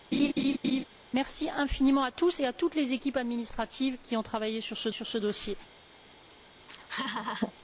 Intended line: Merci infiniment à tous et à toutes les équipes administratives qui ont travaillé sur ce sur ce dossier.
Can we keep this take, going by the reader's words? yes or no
yes